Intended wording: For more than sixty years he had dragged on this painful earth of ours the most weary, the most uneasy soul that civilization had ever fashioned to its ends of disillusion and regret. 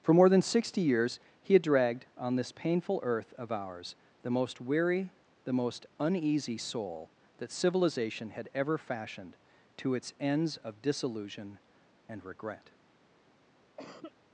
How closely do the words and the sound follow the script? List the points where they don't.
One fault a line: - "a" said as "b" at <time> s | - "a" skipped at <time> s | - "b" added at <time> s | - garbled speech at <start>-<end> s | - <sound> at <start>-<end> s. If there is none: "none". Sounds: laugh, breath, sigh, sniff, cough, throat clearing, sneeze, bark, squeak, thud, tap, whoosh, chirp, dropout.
- cough at 13.8-14.1 s